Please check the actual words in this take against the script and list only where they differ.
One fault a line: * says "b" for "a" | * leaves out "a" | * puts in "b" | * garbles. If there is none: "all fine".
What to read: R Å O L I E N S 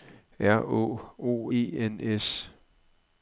* leaves out "L I"